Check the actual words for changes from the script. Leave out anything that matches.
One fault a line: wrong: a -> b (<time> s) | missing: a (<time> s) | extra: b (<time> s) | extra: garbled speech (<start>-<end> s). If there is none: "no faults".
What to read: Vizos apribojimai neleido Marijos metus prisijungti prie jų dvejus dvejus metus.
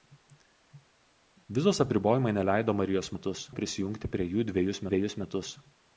no faults